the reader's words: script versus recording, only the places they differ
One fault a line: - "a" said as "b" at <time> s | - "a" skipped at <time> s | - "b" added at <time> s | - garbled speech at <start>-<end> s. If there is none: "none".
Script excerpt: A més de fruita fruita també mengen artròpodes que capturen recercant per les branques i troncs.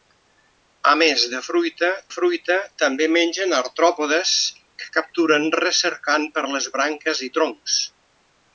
none